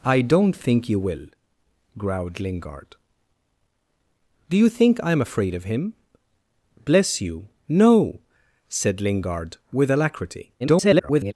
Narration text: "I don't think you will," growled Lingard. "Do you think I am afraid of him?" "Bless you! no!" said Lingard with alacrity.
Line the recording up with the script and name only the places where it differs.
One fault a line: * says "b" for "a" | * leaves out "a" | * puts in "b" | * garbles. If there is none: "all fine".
* garbles